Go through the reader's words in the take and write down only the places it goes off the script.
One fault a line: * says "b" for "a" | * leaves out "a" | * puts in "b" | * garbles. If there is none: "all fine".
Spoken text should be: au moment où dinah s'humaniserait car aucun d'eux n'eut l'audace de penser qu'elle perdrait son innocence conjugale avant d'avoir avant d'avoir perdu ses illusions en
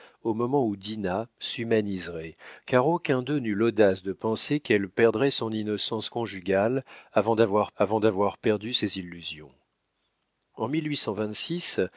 all fine